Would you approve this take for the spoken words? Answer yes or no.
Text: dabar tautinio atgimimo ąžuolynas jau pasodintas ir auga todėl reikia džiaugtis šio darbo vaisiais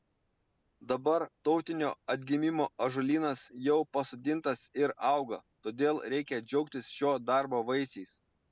yes